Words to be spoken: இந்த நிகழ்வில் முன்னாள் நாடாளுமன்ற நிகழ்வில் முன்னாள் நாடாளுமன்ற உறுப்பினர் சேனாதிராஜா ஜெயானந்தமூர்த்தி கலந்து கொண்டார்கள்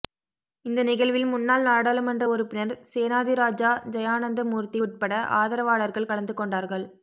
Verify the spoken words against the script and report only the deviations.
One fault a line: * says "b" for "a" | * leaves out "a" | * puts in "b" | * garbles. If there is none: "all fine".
* leaves out "நிகழ்வில் முன்னாள் நாடாளுமன்ற"
* puts in "உட்பட ஆதரவாளர்கள்"